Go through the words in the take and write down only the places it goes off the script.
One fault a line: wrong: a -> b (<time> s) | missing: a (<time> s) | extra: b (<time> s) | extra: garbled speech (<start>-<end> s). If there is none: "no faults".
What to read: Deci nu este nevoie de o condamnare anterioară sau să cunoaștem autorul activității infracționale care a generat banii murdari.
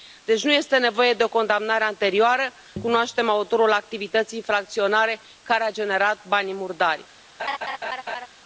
missing: sau să (2.5 s)